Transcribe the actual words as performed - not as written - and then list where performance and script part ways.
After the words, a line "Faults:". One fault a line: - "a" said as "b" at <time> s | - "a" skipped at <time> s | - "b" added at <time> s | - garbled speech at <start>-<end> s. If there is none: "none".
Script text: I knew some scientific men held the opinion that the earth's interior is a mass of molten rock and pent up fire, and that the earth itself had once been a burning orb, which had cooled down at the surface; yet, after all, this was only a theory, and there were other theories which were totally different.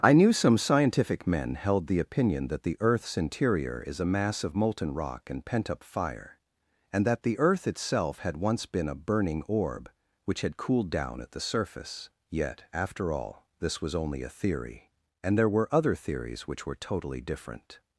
I knew some scientific men held the opinion that the earth's interior is a mass of molten rock and pent up fire, and that the earth itself had once been a burning orb, which had cooled down at the surface; yet, after all, this was only a theory, and there were other theories which were totally different.
Faults:
none